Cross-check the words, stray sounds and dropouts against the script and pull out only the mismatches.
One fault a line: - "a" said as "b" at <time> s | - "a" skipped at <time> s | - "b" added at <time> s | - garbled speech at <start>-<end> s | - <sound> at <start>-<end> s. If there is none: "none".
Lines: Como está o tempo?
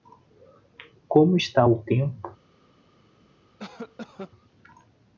- cough at 3.6-4.3 s